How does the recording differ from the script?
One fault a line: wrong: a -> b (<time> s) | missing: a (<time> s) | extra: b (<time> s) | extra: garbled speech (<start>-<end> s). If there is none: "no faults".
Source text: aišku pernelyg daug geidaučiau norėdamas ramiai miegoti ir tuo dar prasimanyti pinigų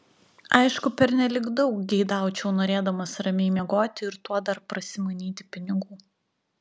no faults